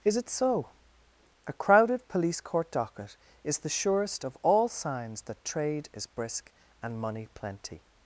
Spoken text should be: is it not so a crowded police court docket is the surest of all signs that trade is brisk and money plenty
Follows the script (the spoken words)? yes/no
no